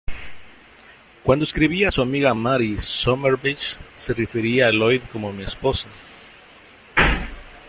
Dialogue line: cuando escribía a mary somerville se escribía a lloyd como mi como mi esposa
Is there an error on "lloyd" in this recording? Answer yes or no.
no